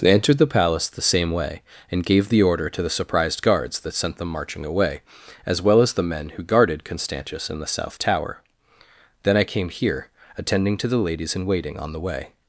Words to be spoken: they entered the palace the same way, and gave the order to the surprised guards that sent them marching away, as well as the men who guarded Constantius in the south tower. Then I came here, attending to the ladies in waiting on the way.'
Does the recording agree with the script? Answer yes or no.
yes